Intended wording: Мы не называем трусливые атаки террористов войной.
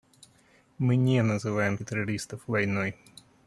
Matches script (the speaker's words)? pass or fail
fail